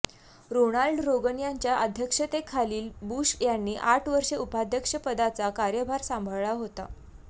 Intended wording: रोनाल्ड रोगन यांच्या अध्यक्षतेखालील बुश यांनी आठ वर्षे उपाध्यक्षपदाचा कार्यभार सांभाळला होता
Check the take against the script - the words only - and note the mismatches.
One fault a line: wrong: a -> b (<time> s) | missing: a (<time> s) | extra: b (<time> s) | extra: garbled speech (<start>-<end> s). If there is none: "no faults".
no faults